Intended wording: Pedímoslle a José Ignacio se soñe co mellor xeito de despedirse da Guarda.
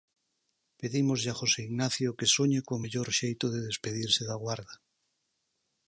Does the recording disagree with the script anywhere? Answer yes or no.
yes